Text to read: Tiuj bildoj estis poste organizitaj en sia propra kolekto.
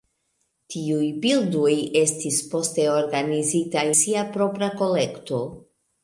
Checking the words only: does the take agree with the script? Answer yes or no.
no